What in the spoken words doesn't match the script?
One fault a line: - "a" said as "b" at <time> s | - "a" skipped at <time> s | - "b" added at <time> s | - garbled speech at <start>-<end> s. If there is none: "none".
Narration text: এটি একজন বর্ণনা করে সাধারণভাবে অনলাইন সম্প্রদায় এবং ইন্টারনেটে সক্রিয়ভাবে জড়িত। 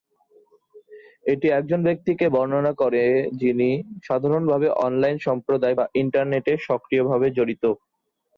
- "ব্যক্তিকে" added at 1.9 s
- "যিনি" added at 3.4 s
- "এবং" said as "বা" at 5.7 s